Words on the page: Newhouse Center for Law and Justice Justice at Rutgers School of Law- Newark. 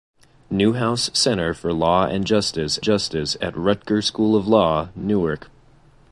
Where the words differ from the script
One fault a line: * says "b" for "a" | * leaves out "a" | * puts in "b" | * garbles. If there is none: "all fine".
all fine